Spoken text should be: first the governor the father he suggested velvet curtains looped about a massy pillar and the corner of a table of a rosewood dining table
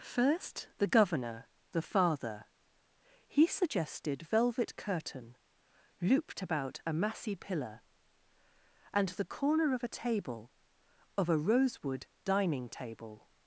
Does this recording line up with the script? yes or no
no